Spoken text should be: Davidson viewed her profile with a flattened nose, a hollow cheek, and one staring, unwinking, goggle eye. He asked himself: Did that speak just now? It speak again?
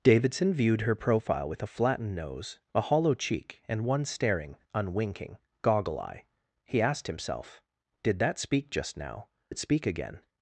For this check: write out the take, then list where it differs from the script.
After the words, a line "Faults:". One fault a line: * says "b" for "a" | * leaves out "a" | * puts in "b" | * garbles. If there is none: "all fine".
Davidson viewed her profile with a flattened nose, a hollow cheek, and one staring, unwinking, goggle eye. He asked himself: Did that speak just now? It speak again?
Faults:
all fine